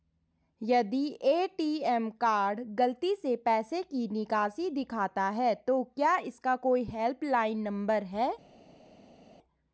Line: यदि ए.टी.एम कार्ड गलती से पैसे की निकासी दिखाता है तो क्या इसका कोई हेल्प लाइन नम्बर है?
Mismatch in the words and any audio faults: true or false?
false